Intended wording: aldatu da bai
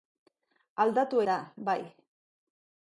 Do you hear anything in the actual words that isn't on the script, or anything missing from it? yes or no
no